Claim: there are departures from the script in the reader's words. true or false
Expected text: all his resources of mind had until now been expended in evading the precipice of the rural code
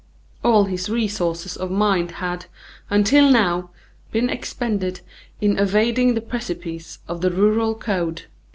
false